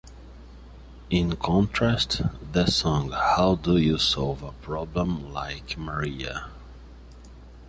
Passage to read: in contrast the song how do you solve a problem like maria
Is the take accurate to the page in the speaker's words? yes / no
yes